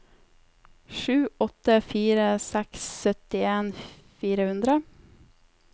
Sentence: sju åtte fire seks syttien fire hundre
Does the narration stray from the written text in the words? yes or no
no